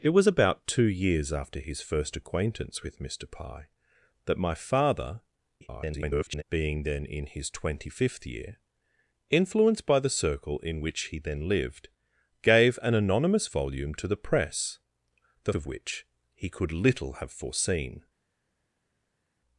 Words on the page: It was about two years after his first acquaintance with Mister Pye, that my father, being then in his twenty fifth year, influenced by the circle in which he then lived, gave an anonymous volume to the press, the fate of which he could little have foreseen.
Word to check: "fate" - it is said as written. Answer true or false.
false